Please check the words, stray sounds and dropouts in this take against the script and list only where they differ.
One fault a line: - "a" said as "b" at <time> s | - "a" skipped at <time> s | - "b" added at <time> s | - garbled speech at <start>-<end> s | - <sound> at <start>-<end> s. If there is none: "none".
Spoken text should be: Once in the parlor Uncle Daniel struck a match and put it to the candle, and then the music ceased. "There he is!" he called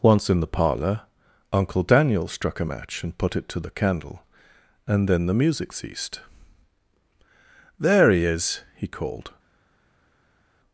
none